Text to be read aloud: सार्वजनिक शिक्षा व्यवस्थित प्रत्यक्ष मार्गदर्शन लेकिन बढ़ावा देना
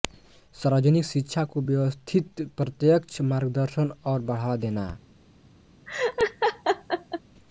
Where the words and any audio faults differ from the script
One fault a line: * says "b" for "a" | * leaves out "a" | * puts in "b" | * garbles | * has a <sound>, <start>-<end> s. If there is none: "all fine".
* puts in "को"
* says "और" for "लेकिन"
* has a laugh, 5.9-7.2 s